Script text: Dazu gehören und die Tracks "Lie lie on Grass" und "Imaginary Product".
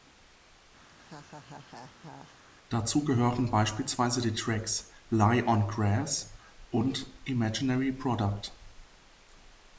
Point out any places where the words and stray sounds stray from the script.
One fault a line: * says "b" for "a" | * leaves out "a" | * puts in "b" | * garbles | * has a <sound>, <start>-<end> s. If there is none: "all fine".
* has a laugh, 0.9-2.4 s
* says "beispielsweise" for "und"
* leaves out "lie"